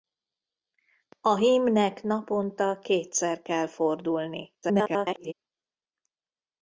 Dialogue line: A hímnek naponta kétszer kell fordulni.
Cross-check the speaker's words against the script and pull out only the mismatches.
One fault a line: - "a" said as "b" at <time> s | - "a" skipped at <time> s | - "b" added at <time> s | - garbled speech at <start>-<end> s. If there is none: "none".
- garbled speech at 4.6-5.3 s